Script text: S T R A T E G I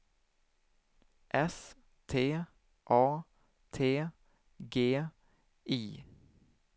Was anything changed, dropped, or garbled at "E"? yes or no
yes